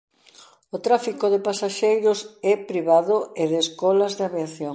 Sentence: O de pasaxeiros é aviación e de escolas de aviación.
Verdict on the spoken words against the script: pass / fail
fail